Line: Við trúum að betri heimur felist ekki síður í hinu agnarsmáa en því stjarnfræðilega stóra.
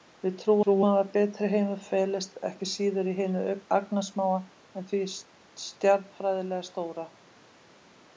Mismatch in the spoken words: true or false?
true